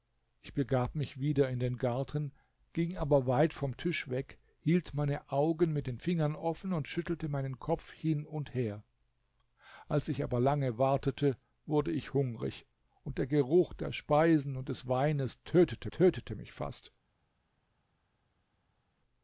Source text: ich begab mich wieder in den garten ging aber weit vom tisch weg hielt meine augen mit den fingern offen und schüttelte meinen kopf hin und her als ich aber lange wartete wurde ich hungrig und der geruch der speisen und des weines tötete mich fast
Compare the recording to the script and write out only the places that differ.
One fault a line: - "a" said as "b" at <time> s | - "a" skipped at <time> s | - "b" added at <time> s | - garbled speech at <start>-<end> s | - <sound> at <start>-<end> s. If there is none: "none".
- "tötete" added at 15.9 s